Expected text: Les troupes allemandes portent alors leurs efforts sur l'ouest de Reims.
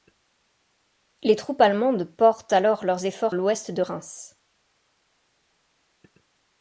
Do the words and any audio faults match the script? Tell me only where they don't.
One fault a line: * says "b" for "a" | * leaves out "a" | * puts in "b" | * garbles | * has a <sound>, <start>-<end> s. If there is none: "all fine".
* leaves out "sur"